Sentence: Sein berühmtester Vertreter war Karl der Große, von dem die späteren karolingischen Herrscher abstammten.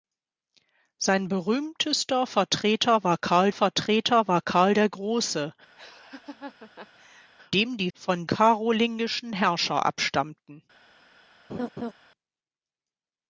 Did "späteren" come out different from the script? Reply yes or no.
yes